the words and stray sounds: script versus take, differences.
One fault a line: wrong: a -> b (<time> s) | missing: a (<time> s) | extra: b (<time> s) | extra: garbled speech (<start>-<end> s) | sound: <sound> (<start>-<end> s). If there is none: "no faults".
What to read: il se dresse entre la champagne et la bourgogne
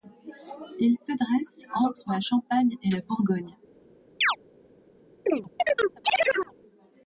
sound: chirp (4.2-4.4 s)
sound: chirp (5.3-6.5 s)